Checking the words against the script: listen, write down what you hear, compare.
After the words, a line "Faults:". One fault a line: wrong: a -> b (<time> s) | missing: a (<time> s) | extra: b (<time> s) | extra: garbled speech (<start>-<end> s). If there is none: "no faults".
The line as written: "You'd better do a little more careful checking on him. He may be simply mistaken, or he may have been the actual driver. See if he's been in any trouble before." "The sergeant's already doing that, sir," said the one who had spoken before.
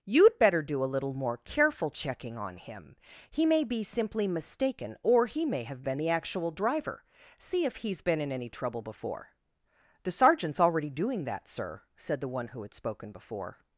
"You'd better do a little more careful checking on him. He may be simply mistaken, or he may have been the actual driver. See if he's been in any trouble before." "The sergeant's already doing that, sir," said the one who had spoken before.
Faults:
no faults